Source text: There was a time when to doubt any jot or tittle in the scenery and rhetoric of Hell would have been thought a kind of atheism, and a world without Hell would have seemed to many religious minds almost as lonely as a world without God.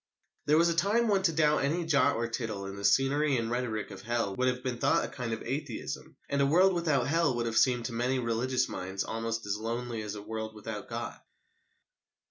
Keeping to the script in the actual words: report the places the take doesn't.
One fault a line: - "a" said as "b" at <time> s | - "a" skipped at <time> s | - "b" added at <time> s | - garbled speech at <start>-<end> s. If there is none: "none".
none